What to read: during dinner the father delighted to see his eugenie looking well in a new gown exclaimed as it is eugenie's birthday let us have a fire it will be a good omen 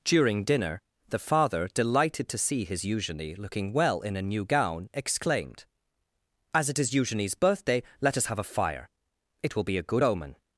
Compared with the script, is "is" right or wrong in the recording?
right